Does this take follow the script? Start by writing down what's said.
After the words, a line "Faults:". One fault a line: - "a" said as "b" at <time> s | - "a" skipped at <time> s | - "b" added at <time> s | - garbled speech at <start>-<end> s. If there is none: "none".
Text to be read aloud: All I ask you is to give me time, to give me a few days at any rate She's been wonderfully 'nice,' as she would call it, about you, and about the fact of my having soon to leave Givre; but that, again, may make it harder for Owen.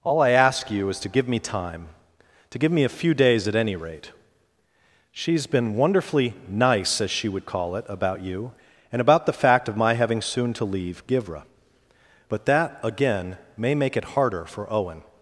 All I ask you is to give me time, to give me a few days at any rate She's been wonderfully 'nice,' as she would call it, about you, and about the fact of my having soon to leave Givre; but that, again, may make it harder for Owen.
Faults:
none